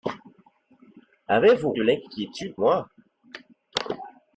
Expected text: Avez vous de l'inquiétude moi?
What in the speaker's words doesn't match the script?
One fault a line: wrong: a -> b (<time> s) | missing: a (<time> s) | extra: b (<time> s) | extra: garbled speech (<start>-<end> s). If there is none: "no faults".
no faults